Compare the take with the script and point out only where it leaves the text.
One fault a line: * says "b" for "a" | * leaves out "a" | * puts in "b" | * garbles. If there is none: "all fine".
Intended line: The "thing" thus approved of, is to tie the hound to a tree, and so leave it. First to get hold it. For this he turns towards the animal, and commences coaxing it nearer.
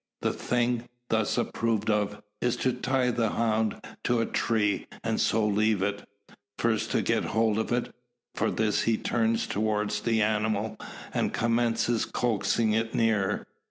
* puts in "of"